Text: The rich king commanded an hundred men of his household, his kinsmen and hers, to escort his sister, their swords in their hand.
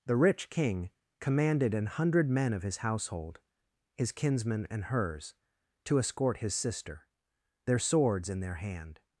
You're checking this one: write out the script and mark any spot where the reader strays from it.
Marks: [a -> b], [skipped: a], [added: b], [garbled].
The rich king commanded an hundred men of his household, his kinsmen and hers, to escort his sister, their swords in their hand.